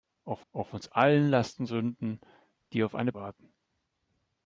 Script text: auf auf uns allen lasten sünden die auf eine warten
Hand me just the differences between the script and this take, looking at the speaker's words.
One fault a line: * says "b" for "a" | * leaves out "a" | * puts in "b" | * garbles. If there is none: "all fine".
all fine